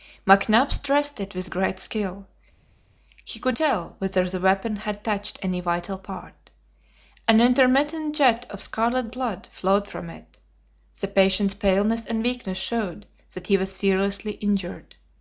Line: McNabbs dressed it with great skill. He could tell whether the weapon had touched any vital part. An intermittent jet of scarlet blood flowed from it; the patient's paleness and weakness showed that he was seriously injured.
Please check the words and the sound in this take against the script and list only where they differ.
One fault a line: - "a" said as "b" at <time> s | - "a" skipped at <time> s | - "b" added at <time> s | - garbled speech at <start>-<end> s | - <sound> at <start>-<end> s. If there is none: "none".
none